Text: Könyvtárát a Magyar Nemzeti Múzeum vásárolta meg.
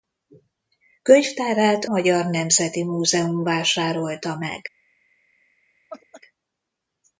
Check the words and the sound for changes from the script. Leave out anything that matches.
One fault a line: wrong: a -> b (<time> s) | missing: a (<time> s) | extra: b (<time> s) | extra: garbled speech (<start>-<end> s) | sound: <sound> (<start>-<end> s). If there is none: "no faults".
missing: a (1.9 s)
sound: laugh (5.9-6.2 s)